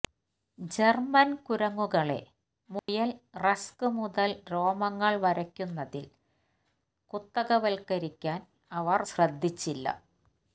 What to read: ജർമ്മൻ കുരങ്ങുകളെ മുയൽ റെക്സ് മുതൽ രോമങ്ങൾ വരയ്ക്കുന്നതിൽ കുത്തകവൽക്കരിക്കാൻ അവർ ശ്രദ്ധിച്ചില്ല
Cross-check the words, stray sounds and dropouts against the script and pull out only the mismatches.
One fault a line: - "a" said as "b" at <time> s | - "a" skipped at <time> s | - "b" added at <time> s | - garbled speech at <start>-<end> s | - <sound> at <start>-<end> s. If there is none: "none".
- dropout at 2.8-2.9 s